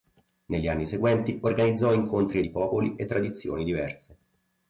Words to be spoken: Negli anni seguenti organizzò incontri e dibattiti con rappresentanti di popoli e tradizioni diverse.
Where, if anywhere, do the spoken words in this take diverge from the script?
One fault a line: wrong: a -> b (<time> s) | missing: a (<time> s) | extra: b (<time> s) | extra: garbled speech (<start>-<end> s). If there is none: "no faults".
missing: dibattiti con rappresentanti (2.4 s)